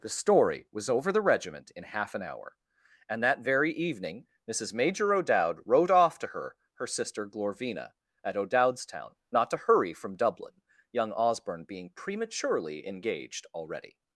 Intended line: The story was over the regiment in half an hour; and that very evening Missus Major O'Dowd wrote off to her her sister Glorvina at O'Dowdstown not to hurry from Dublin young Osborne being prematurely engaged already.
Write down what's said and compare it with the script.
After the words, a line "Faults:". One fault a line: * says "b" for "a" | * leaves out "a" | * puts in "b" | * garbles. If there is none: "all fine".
The story was over the regiment in half an hour; and that very evening Missus Major O'Dowd wrote off to her her sister Glorvina at O'Dowdstown not to hurry from Dublin young Osborne being prematurely engaged already.
Faults:
all fine